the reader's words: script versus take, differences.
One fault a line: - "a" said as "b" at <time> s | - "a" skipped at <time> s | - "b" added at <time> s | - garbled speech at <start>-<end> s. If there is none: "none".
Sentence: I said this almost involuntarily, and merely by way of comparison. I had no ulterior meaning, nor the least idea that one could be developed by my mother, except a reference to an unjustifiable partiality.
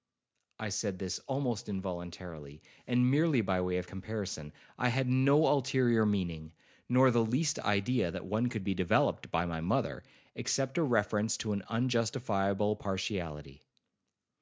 none